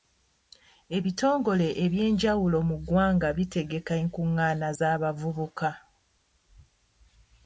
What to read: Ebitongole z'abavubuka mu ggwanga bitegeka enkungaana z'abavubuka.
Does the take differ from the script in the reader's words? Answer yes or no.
yes